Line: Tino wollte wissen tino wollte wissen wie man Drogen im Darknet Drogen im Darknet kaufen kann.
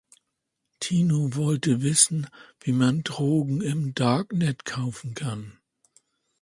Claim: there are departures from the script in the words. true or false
true